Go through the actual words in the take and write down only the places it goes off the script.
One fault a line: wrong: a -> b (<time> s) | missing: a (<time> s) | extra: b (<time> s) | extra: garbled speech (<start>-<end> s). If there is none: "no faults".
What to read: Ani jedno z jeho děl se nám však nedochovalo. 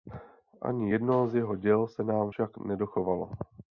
no faults